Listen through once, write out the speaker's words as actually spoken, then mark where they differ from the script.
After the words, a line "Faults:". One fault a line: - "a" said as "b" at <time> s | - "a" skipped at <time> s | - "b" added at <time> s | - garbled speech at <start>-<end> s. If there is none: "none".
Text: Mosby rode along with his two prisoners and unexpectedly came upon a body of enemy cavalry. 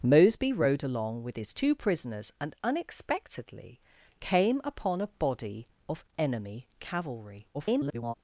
Mosby rode along with his two prisoners and unexpectedly came upon a body of enemy cavalry. [garbled]
Faults:
- garbled speech at 7.5-8.1 s